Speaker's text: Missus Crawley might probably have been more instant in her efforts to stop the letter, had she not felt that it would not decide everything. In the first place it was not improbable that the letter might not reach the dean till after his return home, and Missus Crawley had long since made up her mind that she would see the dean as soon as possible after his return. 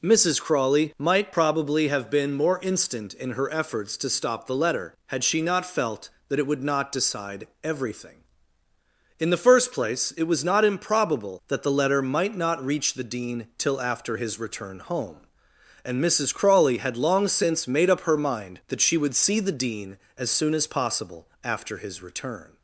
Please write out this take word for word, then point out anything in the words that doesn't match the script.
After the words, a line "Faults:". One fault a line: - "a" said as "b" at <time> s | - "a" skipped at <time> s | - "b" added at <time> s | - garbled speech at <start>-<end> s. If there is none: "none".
Missus Crawley might probably have been more instant in her efforts to stop the letter, had she not felt that it would not decide everything. In the first place it was not improbable that the letter might not reach the dean till after his return home, and Missus Crawley had long since made up her mind that she would see the dean as soon as possible after his return.
Faults:
none